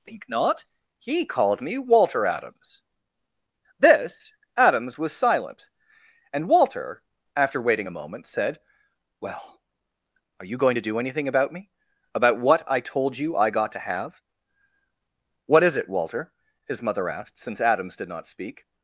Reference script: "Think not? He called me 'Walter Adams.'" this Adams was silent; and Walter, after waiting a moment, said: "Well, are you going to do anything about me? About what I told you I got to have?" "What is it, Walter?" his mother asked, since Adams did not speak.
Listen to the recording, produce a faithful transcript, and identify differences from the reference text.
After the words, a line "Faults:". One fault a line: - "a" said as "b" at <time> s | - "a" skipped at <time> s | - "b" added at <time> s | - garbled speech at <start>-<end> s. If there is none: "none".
"Think not? He called me 'Walter Adams.'" this Adams was silent; and Walter, after waiting a moment, said: "Well, are you going to do anything about me? About what I told you I got to have?" "What is it, Walter?" his mother asked, since Adams did not speak.
Faults:
none